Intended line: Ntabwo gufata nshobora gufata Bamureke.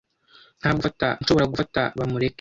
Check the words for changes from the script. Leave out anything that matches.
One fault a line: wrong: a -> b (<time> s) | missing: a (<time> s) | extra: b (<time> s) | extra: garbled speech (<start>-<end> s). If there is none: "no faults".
no faults